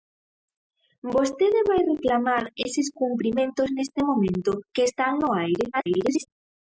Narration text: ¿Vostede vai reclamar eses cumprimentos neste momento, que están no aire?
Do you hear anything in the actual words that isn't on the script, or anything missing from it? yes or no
yes